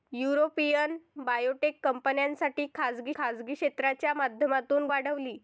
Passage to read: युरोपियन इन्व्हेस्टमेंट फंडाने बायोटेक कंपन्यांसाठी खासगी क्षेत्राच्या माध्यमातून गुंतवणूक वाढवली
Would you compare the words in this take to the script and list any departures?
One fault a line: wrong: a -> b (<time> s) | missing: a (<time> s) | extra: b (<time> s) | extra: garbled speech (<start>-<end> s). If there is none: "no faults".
missing: इन्व्हेस्टमेंट फंडाने (1.0 s)
extra: खासगी (3.1 s)
missing: गुंतवणूक (4.9 s)